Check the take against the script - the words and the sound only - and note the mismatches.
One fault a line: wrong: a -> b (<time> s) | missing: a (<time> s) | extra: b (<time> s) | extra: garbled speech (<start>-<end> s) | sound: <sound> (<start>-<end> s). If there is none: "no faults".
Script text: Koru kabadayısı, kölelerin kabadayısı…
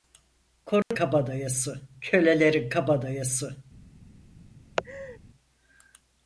sound: dropout (0.8-0.9 s)
sound: laugh (4.8-5.2 s)